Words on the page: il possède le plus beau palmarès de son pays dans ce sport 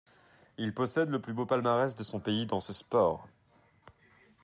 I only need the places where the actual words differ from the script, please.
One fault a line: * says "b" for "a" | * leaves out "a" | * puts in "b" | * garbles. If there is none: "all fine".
all fine